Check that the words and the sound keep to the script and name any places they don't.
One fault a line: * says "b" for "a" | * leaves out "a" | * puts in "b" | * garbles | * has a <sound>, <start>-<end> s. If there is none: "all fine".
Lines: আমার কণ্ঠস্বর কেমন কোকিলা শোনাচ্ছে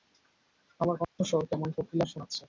* has a dropout, 1.0-1.2 s